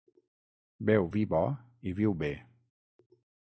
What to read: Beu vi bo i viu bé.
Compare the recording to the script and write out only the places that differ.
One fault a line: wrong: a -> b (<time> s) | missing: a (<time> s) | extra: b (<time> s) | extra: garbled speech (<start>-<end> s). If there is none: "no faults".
no faults